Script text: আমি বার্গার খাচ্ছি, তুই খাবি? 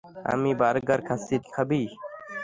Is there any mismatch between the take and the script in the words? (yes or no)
yes